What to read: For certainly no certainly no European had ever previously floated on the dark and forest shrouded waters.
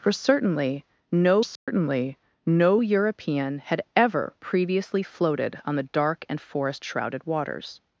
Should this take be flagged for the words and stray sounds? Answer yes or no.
yes